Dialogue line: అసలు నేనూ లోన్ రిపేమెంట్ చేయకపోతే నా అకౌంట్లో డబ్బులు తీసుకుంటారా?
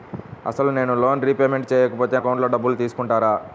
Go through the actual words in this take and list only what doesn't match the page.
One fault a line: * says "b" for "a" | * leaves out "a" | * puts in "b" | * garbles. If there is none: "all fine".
* leaves out "నా"